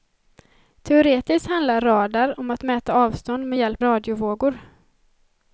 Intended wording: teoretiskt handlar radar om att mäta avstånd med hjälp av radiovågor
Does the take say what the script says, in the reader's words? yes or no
no